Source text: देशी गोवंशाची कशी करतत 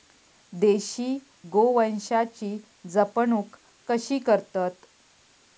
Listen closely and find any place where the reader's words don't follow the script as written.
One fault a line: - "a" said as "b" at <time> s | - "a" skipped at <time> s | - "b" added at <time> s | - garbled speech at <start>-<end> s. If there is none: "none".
- "जपणूक" added at 2.8 s